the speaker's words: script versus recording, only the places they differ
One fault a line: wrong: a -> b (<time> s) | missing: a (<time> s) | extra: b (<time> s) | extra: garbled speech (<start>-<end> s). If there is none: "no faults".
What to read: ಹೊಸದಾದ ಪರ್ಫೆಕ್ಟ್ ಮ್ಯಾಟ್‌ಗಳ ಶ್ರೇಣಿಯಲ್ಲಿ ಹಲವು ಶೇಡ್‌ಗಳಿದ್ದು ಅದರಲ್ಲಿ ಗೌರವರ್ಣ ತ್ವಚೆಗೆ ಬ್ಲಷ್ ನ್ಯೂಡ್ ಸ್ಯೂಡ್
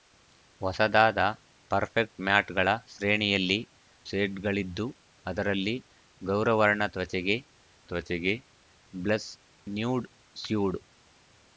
missing: ಹಲವು (3.6 s)
extra: ತ್ವಚೆಗೆ (7.8 s)